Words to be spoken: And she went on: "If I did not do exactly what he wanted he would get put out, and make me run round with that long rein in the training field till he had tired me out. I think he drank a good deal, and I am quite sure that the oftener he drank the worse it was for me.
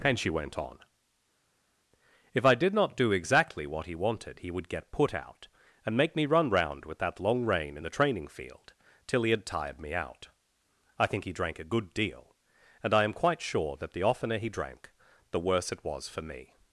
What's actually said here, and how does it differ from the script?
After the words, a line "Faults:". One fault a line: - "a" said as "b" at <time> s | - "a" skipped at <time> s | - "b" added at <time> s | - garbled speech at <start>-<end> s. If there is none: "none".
And she went on: "If I did not do exactly what he wanted he would get put out, and make me run round with that long rein in the training field till he had tired me out. I think he drank a good deal, and I am quite sure that the oftener he drank the worse it was for me.
Faults:
none